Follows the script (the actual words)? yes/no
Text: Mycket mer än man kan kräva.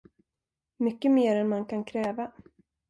yes